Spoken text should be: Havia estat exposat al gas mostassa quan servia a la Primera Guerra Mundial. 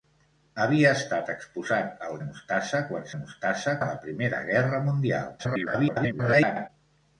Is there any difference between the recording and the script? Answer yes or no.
yes